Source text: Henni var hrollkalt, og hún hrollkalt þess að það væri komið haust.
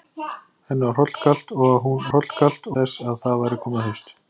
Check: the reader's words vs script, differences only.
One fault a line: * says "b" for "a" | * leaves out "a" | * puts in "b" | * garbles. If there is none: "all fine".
all fine